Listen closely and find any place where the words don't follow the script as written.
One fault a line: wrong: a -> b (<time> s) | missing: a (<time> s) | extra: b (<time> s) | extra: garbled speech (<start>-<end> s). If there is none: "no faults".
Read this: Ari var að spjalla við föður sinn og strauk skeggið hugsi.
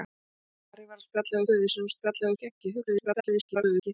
missing: við (1.4 s)
wrong: strauk -> spjalla (1.9 s)
extra: garbled speech (2.9-3.9 s)